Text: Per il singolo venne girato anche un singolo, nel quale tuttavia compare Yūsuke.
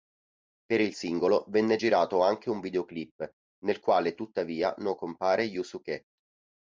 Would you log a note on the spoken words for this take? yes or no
yes